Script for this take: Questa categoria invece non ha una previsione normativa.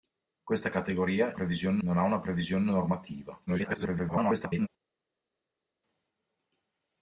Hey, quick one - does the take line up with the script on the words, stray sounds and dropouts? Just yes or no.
no